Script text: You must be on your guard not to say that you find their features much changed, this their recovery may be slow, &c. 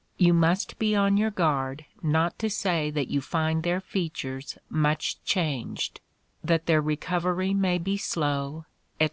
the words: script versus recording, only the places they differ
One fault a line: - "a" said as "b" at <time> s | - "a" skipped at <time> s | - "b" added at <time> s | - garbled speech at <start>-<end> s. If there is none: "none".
- "this" said as "that" at 6.4 s